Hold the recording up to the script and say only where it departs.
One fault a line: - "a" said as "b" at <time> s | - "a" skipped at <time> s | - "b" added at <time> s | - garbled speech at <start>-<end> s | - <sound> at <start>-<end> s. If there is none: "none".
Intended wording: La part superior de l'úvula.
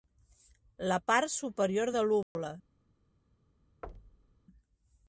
- dropout at 2.2-2.4 s
- thud at 3.8-4.4 s